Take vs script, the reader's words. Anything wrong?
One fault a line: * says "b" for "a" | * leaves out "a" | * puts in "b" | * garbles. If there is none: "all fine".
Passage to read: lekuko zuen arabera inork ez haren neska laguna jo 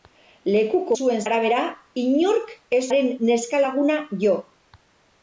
all fine